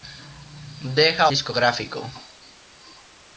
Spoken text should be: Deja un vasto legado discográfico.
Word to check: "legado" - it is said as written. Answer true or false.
false